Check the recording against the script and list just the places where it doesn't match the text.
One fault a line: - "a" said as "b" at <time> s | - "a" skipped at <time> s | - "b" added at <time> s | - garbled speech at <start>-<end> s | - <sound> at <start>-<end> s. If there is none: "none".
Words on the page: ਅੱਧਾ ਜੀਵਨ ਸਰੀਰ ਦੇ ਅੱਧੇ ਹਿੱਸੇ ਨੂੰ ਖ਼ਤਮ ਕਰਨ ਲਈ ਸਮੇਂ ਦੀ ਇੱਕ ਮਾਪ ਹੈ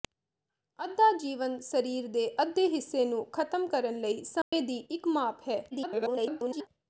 - dropout at 4.4-4.5 s
- garbled speech at 5.7-6.7 s